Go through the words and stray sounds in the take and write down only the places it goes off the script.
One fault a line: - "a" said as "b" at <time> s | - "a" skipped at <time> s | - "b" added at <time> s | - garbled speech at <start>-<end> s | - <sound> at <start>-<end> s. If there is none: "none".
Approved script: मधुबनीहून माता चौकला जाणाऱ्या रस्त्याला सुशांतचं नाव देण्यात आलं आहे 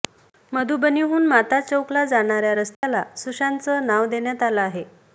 - dropout at 2.7-2.8 s